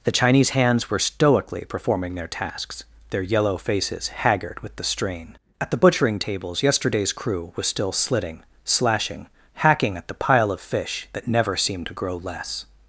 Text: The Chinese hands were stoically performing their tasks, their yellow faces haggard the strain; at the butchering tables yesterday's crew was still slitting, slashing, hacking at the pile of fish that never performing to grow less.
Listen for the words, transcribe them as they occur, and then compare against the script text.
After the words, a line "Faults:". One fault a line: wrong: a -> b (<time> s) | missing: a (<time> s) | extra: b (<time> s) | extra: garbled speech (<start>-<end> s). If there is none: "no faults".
The Chinese hands were stoically performing their tasks, their yellow faces haggard with the strain; at the butchering tables yesterday's crew was still slitting, slashing, hacking at the pile of fish that never seemed to grow less.
Faults:
extra: with (4.6 s)
wrong: performing -> seemed (11.6 s)